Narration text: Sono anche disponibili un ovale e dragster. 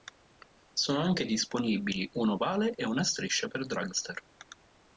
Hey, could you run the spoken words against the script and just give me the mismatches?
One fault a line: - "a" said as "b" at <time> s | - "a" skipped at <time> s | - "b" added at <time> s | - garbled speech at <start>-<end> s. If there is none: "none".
- "una striscia per" added at 2.8 s